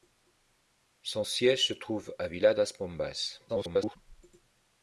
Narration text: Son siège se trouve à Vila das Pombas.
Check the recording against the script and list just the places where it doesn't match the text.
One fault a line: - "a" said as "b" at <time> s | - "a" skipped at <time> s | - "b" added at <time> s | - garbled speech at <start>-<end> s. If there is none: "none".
- garbled speech at 3.5-4.0 s